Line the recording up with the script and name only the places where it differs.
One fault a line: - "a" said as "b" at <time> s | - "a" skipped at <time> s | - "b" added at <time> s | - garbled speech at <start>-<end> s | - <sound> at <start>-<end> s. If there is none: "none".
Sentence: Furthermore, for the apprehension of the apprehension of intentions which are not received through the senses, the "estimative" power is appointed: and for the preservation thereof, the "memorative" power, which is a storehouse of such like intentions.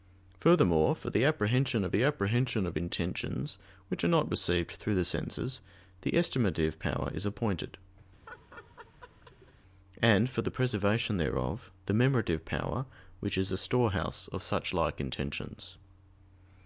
- laugh at 8.3-9.5 s